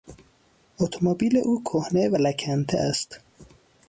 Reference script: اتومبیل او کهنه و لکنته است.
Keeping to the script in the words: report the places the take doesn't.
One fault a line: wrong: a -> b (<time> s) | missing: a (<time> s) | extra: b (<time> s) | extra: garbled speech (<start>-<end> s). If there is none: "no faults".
no faults